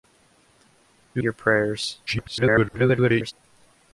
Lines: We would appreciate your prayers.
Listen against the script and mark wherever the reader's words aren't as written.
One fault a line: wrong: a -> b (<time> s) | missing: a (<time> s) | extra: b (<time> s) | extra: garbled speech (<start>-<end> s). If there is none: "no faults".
missing: would appreciate (1.2 s)
extra: garbled speech (2.1-3.3 s)